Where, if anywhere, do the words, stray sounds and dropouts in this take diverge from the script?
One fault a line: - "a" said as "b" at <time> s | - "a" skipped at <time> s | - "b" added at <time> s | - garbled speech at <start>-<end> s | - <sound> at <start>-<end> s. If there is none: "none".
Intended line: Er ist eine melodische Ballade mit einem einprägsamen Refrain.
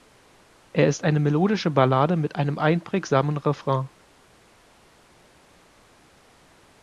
none